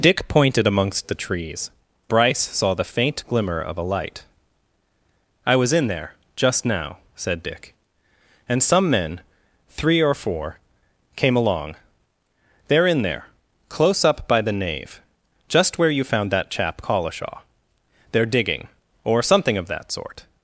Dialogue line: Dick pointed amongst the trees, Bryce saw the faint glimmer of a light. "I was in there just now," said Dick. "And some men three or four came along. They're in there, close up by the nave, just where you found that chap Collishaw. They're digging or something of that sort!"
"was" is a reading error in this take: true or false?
false